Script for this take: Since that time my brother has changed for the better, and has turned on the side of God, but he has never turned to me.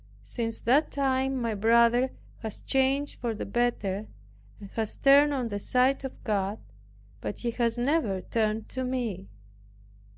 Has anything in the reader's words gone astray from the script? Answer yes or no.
no